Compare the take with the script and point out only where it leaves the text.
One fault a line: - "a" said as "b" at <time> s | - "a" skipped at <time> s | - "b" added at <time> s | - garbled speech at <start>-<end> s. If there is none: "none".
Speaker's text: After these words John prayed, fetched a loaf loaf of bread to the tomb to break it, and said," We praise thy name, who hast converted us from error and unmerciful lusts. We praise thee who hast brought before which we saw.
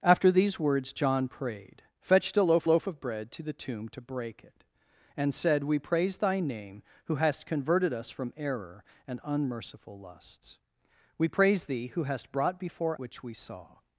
none